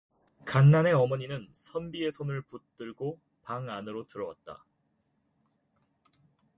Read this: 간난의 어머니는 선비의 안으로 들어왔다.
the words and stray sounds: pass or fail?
fail